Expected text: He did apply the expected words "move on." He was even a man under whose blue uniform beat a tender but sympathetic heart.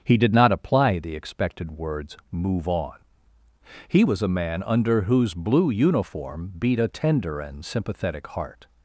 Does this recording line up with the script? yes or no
no